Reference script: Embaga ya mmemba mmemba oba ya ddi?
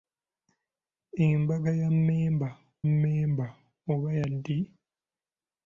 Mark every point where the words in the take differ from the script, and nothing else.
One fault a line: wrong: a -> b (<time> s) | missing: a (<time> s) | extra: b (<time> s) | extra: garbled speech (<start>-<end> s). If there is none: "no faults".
no faults